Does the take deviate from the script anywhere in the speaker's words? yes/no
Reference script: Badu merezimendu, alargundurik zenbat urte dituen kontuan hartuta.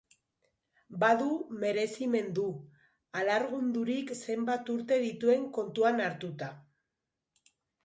no